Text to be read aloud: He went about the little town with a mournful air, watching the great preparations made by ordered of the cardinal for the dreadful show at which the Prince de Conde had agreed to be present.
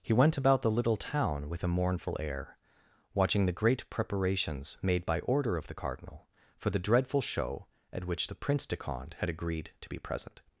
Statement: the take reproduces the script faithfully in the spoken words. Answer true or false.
false